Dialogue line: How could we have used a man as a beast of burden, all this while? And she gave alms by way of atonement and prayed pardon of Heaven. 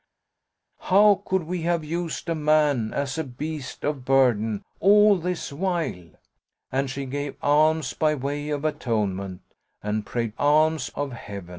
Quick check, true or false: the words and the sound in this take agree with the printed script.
false